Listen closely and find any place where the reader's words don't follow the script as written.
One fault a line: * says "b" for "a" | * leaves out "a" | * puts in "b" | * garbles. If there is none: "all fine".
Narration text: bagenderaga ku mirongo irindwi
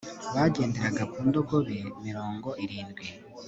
* puts in "ndogobe"